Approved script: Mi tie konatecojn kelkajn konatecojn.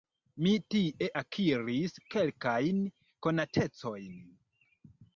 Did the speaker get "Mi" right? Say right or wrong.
right